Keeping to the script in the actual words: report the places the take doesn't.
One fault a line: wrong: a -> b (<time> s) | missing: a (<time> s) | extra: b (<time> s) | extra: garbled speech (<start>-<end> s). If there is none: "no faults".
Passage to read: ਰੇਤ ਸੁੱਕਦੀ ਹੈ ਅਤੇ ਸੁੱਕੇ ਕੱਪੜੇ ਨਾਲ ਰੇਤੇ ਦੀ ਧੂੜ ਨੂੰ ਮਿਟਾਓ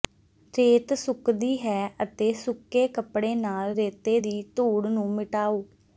no faults